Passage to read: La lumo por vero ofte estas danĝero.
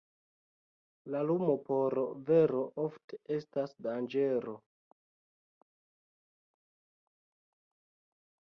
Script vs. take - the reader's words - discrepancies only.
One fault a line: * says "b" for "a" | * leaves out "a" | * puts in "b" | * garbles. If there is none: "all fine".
all fine